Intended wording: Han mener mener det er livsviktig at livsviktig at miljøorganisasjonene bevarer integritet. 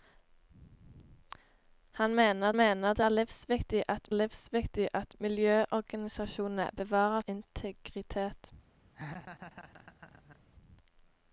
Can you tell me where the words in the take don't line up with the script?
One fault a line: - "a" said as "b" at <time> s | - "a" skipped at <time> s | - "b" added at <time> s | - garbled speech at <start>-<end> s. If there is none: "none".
none